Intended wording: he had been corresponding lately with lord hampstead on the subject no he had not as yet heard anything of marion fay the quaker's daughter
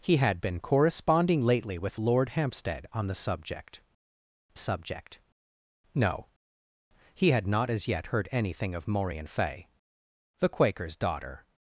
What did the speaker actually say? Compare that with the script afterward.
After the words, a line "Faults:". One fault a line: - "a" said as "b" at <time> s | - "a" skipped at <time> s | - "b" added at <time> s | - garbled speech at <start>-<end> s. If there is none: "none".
he had been corresponding lately with lord hampstead on the subject subject no he had not as yet heard anything of marion fay the quaker's daughter
Faults:
- "subject" added at 4.6 s